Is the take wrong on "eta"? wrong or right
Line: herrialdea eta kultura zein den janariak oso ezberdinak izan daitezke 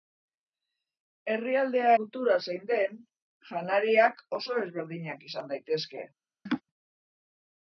wrong